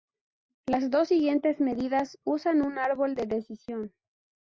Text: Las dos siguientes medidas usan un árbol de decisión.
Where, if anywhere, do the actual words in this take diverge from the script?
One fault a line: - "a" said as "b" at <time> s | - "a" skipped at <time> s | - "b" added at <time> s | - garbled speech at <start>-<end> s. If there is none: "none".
none